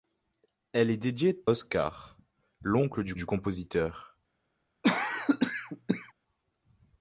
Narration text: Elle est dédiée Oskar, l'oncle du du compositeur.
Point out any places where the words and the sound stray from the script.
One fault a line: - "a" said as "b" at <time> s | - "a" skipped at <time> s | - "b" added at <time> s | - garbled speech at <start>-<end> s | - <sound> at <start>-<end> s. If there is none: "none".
- cough at 4.8-6.1 s